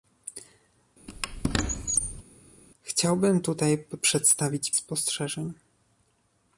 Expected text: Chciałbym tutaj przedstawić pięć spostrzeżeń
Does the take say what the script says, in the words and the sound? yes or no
no